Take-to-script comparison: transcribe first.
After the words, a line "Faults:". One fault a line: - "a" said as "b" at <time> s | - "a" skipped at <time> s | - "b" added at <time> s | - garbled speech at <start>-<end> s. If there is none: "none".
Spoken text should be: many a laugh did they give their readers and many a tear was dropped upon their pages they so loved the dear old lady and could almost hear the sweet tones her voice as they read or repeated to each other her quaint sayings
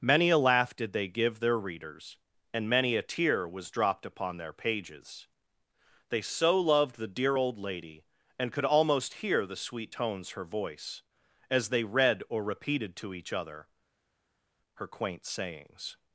many a laugh did they give their readers and many a tear was dropped upon their pages they so loved the dear old lady and could almost hear the sweet tones her voice as they read or repeated to each other her quaint sayings
Faults:
none